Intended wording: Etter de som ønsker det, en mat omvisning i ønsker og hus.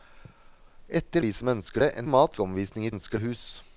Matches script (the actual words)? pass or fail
pass